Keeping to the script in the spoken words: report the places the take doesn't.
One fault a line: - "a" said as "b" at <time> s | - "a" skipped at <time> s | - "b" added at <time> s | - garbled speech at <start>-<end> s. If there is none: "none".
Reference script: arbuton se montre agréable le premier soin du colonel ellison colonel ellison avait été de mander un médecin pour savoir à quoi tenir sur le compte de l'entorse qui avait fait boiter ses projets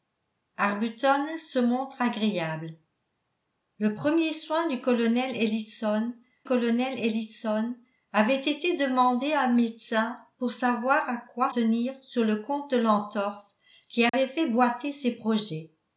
none